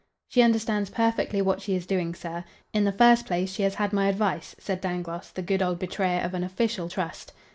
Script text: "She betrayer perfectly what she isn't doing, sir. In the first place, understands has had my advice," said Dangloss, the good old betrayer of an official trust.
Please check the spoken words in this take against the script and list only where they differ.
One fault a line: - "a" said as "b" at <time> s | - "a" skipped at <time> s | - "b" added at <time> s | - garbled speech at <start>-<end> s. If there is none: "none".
- "betrayer" said as "understands" at 0.4 s
- "isn't" said as "is" at 1.8 s
- "understands" said as "she" at 3.5 s